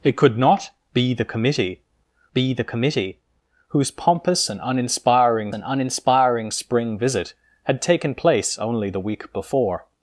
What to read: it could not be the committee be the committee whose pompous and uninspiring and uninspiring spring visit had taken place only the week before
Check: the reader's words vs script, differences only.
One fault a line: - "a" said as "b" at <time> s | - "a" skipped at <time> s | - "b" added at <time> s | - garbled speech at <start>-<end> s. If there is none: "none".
none